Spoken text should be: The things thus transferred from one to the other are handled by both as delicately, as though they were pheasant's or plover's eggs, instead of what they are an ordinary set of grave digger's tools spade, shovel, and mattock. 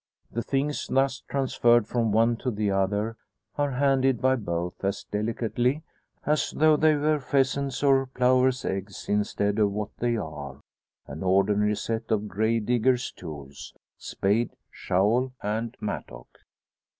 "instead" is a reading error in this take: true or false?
false